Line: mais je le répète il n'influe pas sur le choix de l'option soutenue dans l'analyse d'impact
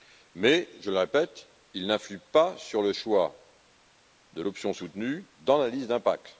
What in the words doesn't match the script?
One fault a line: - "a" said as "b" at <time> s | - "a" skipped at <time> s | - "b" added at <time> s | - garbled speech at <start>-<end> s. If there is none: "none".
none